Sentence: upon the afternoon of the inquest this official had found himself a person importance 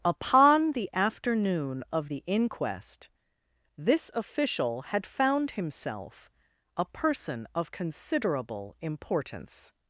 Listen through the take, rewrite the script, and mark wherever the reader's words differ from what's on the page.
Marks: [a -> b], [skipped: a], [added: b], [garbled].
upon the afternoon of the inquest this official had found himself a person [added: of considerable] importance